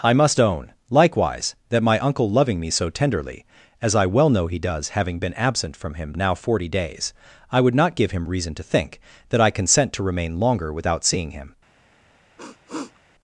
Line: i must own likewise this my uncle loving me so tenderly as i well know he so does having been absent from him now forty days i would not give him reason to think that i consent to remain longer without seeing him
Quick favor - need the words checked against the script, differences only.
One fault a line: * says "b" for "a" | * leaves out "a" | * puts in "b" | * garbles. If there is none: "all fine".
* says "that" for "this"
* leaves out "so"